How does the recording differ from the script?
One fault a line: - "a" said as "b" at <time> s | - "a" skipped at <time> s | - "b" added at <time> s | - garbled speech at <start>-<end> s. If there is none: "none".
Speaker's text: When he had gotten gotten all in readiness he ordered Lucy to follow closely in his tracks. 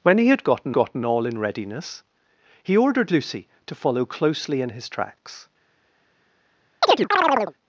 none